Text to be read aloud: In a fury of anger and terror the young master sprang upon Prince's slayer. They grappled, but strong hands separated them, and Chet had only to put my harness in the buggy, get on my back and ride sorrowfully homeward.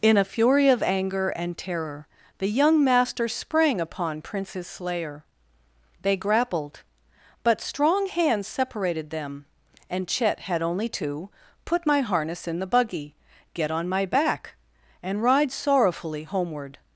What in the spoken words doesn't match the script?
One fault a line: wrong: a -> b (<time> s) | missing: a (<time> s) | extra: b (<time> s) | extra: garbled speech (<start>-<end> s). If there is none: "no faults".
no faults